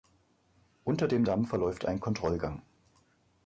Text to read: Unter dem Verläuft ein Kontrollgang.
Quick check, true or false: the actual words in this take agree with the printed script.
false